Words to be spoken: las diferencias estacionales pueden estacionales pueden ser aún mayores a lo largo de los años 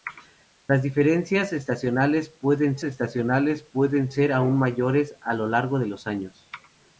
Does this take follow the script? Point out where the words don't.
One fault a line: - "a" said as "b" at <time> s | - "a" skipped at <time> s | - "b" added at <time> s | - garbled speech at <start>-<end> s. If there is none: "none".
none